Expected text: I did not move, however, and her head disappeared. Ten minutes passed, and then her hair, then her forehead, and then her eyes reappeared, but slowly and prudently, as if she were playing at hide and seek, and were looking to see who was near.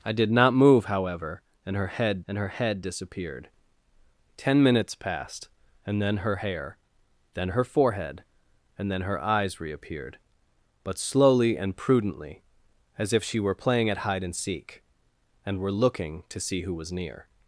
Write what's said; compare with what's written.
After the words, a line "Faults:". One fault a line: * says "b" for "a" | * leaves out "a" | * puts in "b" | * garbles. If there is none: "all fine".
I did not move, however, and her head and her head disappeared. Ten minutes passed, and then her hair, then her forehead, and then her eyes reappeared, but slowly and prudently, as if she were playing at hide and seek, and were looking to see who was near.
Faults:
* puts in "and her head"